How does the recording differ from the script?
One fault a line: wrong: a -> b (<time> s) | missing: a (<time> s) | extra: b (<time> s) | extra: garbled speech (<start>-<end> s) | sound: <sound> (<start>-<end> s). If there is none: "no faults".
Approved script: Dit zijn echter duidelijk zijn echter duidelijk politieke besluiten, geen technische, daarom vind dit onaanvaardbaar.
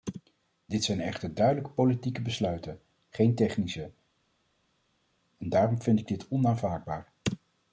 missing: zijn echter duidelijk (1.7 s)
extra: en (5.4 s)
extra: ik (6.0 s)